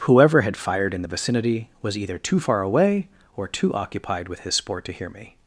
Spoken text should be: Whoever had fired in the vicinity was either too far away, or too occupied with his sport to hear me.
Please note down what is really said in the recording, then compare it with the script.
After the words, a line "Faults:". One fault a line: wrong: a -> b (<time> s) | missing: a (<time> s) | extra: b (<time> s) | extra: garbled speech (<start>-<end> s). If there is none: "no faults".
Whoever had fired in the vicinity was either too far away, or too occupied with his sport to hear me.
Faults:
no faults